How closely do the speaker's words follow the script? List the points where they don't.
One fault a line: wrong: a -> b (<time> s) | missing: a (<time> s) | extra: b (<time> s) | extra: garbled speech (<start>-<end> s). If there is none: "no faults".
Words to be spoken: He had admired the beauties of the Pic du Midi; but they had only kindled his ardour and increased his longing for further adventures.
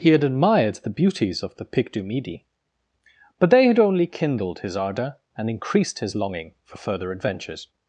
no faults